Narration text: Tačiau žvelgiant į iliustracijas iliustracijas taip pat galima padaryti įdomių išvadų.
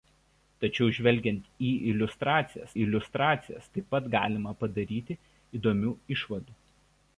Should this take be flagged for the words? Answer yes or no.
no